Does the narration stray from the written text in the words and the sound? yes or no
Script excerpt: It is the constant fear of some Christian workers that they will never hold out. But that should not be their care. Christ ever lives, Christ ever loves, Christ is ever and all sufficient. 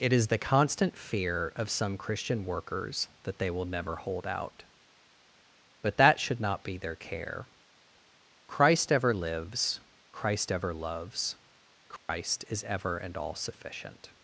yes